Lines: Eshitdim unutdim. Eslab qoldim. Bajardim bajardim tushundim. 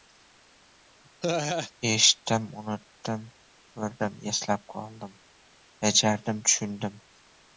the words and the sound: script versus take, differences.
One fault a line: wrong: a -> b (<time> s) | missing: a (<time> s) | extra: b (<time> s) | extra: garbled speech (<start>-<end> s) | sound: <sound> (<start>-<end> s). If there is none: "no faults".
sound: laugh (1.2-1.7 s)
extra: Ko‘rdim (3.8 s)
missing: bajardim (6.4 s)